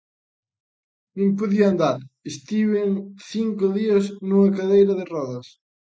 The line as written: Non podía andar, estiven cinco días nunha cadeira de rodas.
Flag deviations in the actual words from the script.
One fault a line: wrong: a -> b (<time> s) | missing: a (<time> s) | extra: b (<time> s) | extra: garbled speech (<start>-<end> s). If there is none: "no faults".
no faults